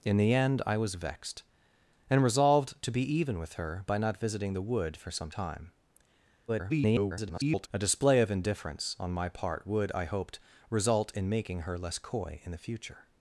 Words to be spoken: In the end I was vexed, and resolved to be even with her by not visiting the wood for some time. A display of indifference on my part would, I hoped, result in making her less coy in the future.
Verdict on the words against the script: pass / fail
fail